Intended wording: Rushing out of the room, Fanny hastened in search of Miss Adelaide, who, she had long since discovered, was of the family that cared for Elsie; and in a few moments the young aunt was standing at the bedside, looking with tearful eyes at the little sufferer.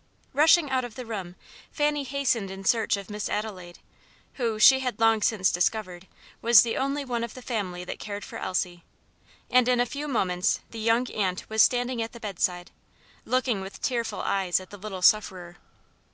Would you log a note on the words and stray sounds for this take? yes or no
yes